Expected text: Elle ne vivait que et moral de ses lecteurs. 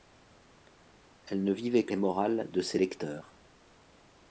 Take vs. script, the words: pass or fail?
pass